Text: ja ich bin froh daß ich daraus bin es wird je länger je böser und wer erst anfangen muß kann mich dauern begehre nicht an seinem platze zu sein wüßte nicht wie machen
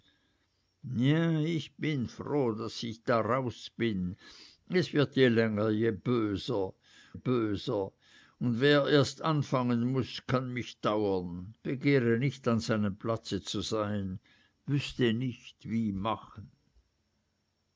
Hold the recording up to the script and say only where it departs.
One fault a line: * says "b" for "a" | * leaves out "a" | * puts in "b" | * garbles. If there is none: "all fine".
* puts in "böser"